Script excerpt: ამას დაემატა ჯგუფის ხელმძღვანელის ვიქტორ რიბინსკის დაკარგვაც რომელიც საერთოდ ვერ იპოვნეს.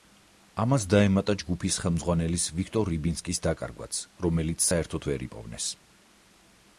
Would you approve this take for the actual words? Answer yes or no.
yes